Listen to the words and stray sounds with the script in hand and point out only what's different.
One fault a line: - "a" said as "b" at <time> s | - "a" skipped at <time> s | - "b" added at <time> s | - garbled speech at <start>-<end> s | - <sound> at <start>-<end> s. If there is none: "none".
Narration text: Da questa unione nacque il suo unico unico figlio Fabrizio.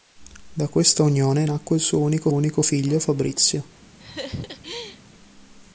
- laugh at 4.0-5.0 s